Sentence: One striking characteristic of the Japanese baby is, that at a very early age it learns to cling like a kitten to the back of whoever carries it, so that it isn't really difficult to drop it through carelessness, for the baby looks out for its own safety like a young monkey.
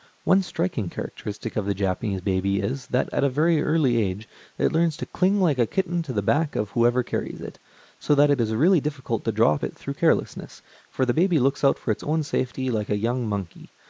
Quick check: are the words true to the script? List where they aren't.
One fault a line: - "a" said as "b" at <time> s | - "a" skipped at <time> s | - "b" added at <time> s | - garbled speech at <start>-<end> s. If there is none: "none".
- "isn't" said as "is" at 8.4 s